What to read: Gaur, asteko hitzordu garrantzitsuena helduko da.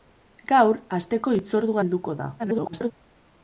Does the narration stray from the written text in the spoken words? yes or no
yes